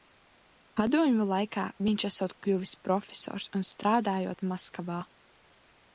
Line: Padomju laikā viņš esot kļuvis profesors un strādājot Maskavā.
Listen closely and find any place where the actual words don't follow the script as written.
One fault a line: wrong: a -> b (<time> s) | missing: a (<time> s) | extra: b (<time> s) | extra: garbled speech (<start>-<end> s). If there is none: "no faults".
no faults